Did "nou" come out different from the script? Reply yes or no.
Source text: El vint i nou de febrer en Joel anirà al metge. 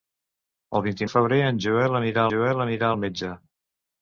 yes